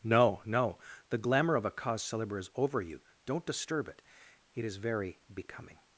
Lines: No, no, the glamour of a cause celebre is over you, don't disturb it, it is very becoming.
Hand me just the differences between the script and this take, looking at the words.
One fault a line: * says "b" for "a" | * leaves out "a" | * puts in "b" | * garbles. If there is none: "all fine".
all fine